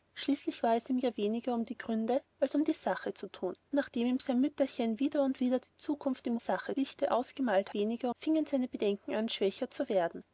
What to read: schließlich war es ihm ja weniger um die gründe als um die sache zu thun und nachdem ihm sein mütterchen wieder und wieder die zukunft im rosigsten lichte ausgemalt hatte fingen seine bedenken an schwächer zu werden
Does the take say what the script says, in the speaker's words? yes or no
no